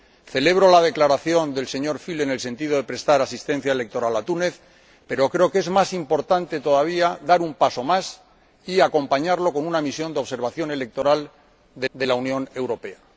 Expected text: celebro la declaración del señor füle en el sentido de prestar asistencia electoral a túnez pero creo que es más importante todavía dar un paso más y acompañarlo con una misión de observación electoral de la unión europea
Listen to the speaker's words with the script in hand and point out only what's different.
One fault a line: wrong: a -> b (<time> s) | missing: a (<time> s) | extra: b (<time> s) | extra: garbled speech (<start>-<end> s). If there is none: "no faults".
extra: de (11.9 s)